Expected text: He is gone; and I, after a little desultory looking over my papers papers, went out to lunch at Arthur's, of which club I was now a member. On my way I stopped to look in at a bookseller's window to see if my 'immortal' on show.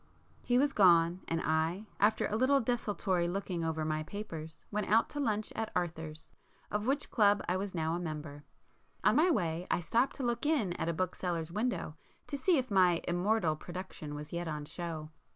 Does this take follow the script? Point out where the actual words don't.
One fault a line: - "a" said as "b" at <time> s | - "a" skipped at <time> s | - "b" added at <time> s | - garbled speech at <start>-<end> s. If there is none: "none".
- "is" said as "was" at 0.6 s
- "papers" skipped at 4.7 s
- "production was yet" added at 13.6 s